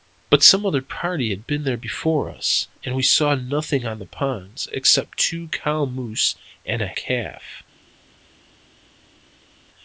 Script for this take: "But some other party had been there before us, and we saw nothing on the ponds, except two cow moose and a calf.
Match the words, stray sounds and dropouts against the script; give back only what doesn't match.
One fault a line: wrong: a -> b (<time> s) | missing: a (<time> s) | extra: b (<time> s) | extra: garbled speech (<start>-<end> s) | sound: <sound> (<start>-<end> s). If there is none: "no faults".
no faults